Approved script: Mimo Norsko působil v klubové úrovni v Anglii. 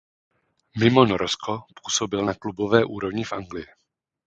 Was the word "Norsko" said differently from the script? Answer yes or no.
no